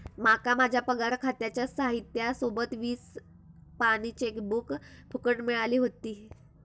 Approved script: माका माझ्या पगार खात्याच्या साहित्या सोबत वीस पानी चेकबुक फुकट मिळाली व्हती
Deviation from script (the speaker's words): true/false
false